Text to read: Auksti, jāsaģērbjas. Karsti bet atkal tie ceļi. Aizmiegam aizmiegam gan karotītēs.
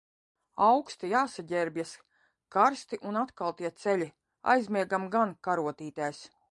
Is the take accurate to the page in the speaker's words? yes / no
no